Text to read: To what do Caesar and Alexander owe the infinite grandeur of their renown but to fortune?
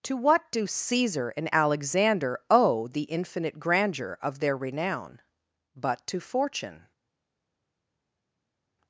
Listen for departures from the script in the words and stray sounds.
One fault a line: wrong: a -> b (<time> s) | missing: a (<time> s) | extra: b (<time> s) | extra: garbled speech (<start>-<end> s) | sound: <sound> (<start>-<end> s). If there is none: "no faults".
no faults